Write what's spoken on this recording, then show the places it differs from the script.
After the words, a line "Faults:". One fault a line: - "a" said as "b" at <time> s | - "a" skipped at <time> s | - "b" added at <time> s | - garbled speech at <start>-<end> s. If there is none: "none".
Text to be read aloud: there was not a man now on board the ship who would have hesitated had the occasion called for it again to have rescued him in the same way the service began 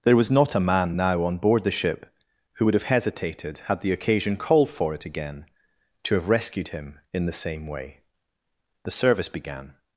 there was not a man now on board the ship who would have hesitated had the occasion called for it again to have rescued him in the same way the service began
Faults:
none